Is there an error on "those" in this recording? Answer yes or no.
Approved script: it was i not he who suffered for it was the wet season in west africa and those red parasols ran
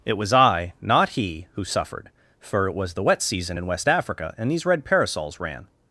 yes